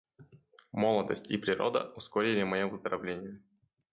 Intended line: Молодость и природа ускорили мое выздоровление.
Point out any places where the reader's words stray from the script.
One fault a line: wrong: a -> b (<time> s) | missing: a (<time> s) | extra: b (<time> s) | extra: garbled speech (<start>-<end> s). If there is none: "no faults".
no faults